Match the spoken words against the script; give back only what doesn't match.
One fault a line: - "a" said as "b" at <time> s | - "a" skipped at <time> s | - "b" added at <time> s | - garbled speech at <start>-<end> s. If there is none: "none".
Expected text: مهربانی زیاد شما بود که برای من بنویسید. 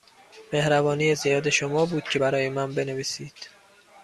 none